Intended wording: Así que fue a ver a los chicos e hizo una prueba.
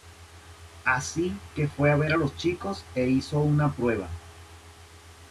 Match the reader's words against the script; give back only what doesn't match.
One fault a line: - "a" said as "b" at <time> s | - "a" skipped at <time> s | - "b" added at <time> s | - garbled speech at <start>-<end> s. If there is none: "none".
none